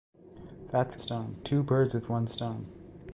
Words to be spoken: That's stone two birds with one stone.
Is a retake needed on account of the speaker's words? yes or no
no